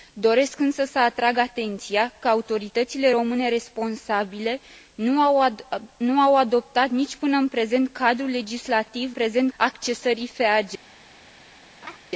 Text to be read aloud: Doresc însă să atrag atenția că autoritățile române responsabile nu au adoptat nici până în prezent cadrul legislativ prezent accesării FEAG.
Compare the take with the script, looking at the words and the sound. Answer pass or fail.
fail